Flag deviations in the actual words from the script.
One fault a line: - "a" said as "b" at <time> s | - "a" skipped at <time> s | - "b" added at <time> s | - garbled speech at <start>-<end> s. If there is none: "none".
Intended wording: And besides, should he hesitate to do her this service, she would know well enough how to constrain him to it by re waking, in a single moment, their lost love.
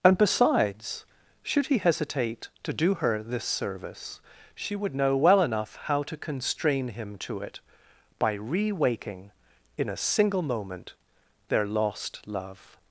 none